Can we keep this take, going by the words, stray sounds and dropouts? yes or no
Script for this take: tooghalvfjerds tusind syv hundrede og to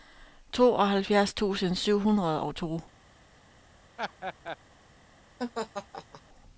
no